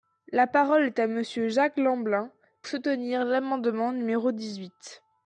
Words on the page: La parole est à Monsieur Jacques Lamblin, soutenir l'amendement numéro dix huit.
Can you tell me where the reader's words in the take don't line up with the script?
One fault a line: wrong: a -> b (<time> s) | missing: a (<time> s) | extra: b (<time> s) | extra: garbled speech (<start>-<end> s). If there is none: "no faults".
no faults